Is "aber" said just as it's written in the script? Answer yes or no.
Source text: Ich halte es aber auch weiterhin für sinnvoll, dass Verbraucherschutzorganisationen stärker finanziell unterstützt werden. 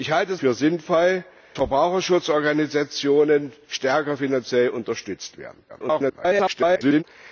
no